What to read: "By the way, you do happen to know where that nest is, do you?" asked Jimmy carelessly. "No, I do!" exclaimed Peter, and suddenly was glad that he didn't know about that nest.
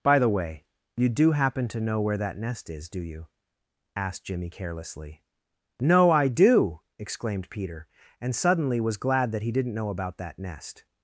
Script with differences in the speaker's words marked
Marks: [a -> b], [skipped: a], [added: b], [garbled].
"By the way, you do happen to know where that nest is, do you?" asked Jimmy carelessly. "No, I do!" exclaimed Peter, and suddenly was glad that he didn't know about that nest.